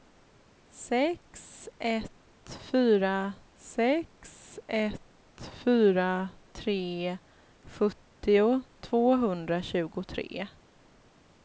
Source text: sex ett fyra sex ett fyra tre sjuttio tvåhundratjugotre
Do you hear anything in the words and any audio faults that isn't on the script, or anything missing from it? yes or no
no